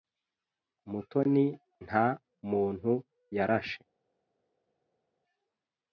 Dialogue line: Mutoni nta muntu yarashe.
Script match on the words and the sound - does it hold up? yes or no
yes